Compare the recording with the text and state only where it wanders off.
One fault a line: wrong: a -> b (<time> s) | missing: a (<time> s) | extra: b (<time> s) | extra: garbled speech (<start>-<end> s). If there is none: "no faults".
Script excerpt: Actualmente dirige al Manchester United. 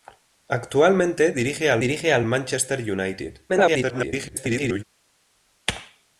extra: dirige al (1.8 s)
extra: garbled speech (3.5-4.8 s)